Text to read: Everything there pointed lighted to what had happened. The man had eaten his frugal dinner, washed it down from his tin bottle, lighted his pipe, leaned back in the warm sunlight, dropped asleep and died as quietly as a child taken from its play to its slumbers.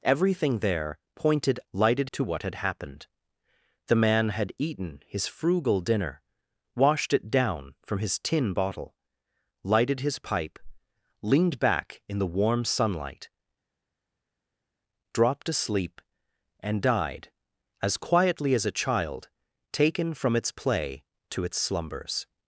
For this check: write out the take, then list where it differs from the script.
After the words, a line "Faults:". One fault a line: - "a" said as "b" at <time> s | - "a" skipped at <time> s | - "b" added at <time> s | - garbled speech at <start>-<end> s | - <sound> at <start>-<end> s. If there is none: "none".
Everything there pointed lighted to what had happened. The man had eaten his frugal dinner, washed it down from his tin bottle, lighted his pipe, leaned back in the warm sunlight, dropped asleep and died as quietly as a child taken from its play to its slumbers.
Faults:
none